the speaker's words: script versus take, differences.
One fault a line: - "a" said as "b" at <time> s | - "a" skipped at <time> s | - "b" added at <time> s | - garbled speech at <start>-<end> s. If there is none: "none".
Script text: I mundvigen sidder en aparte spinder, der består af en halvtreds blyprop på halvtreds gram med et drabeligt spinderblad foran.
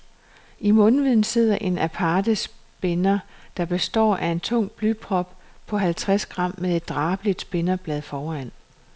- "halvtreds" said as "tung" at 4.4 s